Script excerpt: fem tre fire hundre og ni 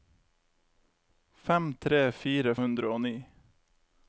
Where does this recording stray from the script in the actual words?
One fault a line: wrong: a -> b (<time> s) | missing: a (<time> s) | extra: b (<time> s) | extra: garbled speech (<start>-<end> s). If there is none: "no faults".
no faults